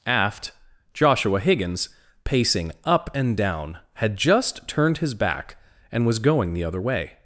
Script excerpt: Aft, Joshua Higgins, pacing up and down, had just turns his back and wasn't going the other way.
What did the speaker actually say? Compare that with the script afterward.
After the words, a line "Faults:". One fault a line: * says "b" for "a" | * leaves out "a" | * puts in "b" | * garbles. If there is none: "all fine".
Aft, Joshua Higgins, pacing up and down, had just turned his back and was going the other way.
Faults:
* says "turned" for "turns"
* says "was" for "wasn't"